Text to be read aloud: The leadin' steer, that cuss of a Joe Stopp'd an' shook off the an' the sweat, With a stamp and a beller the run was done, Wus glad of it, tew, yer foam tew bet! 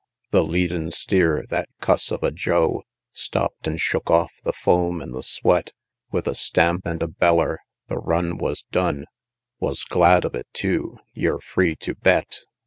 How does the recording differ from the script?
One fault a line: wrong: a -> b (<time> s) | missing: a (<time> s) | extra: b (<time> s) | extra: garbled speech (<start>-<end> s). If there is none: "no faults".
extra: foam (4.5 s)
wrong: foam -> free (11.4 s)